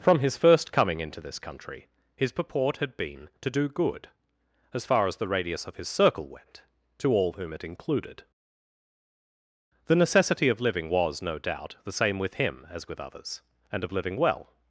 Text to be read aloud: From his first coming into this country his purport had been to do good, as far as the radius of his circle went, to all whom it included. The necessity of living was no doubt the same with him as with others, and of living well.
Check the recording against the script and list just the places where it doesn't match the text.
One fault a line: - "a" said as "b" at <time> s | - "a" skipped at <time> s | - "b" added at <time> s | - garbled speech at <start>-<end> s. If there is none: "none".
none